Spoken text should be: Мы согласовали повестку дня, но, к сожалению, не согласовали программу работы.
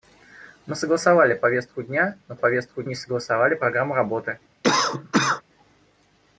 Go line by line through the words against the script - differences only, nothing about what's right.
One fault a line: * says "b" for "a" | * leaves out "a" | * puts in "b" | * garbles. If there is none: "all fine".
* says "повестку" for "сожалению"